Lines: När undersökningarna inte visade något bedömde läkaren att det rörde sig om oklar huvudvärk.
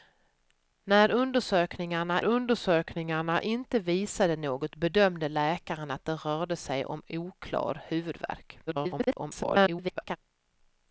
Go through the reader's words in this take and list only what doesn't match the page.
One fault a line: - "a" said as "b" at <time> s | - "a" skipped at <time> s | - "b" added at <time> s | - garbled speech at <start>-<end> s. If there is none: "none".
- "undersökningarna" added at 2.2 s
- garbled speech at 8.7-10.2 s